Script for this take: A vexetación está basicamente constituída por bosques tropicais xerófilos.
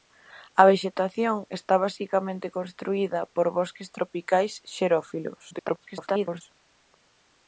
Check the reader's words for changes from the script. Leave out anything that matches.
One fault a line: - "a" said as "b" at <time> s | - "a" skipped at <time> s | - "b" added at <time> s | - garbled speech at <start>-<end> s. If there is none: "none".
- garbled speech at 5.5-6.4 s